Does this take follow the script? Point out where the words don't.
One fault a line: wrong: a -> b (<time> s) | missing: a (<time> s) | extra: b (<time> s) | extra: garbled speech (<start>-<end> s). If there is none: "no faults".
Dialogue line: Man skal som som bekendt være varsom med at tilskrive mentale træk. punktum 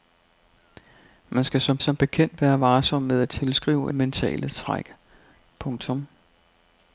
no faults